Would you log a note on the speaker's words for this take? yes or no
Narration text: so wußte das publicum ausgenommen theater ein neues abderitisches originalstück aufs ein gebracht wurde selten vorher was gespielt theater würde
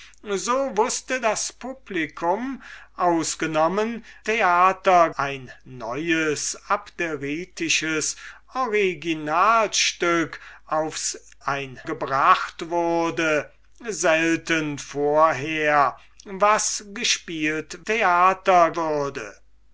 no